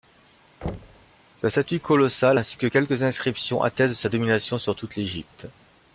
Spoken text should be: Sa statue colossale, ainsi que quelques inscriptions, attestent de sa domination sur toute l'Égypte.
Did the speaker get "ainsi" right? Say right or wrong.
right